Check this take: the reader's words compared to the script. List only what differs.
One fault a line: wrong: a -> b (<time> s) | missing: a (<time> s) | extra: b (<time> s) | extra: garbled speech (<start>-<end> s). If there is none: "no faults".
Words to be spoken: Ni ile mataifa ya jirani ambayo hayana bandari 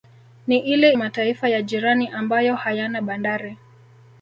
no faults